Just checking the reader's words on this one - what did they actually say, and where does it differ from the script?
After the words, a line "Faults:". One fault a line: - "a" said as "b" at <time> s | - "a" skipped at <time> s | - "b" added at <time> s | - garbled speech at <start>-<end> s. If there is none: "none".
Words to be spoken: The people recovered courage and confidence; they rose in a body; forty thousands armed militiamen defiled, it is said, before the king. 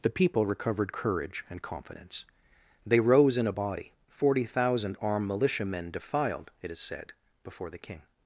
The people recovered courage and confidence; they rose in a body; forty thousand armed militiamen defiled, it is said, before the king.
Faults:
- "thousands" said as "thousand" at 4.4 s